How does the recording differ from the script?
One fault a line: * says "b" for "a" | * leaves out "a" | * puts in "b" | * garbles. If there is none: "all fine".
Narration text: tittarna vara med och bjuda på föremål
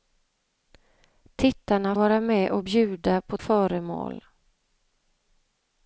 all fine